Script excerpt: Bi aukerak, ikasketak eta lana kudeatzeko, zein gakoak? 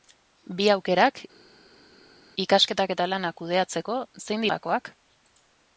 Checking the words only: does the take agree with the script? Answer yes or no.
yes